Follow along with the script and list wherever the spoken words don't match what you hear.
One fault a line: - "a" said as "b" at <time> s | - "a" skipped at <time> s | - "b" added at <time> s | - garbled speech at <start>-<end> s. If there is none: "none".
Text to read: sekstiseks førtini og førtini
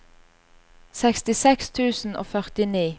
- "førtini" said as "tusen" at 1.8 s